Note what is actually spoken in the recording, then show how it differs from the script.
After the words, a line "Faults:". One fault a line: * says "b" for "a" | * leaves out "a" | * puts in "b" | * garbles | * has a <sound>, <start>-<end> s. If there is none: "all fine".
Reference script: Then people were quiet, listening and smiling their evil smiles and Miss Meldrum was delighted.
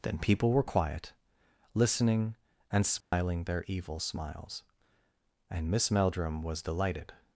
Then people were quiet, listening and smiling their evil smiles and Miss Meldrum was delighted.
Faults:
* has a dropout, 3.0-3.1 s